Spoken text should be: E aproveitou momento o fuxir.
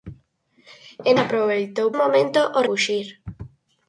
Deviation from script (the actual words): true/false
false